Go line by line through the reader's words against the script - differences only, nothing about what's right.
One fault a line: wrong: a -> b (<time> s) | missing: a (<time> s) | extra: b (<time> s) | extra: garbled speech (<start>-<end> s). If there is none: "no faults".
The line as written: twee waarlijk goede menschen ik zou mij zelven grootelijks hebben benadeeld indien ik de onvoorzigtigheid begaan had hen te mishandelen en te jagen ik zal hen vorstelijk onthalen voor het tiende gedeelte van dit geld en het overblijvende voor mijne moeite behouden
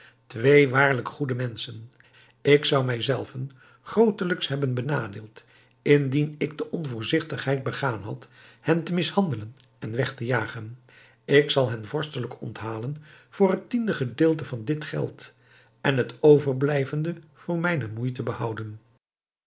extra: weg (10.0 s)